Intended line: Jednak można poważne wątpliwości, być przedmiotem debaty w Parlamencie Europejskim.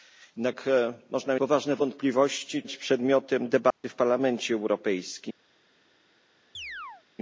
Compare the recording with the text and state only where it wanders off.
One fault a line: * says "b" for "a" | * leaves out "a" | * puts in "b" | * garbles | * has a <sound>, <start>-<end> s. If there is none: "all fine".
* has a dropout, 3.7-3.8 s
* has a chirp, 6.5-7.0 s